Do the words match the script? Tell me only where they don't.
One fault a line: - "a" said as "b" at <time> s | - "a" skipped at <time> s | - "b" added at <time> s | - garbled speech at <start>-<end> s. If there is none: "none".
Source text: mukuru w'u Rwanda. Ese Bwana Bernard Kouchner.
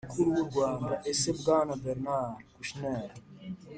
none